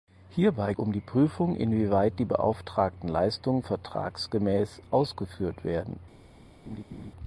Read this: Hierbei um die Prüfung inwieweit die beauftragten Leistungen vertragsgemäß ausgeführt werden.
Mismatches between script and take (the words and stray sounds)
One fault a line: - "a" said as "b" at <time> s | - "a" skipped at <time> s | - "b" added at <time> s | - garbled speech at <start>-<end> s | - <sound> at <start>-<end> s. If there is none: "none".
- laugh at 6.6-7.1 s